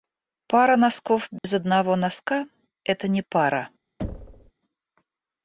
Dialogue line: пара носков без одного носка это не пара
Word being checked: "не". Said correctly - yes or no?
yes